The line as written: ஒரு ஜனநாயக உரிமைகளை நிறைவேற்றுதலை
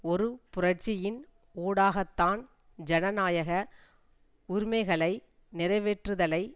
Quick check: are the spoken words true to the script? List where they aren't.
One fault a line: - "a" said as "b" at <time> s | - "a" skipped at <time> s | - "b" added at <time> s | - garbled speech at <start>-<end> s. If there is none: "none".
- "புரட்சியின் ஊடாகத்தான்" added at 0.5 s